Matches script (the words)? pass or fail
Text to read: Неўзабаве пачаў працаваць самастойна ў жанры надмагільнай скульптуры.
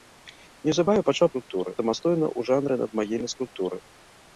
fail